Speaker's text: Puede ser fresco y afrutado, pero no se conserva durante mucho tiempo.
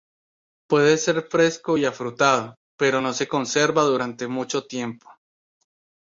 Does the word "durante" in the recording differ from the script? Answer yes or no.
no